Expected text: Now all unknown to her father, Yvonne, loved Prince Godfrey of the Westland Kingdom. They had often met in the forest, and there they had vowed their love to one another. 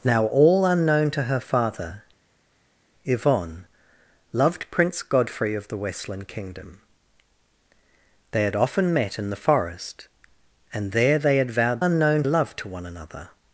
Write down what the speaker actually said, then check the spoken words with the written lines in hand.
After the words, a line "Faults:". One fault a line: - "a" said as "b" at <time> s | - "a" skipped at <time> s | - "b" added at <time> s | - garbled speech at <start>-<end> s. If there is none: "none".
Now all unknown to her father, Yvonne, loved Prince Godfrey of the Westland Kingdom. They had often met in the forest, and there they had vowed unknown love to one another.
Faults:
- "their" said as "unknown" at 11.8 s